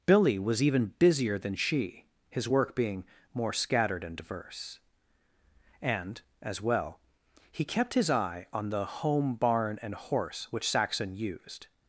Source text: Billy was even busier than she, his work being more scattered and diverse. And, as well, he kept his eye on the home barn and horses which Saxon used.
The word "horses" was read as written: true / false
false